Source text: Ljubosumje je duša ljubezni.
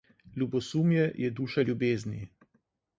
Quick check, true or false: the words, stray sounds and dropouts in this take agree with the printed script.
true